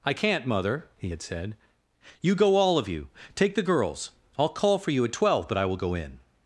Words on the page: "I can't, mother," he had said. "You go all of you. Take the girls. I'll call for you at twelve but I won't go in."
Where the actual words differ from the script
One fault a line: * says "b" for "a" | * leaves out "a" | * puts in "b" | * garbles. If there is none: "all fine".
* says "will" for "won't"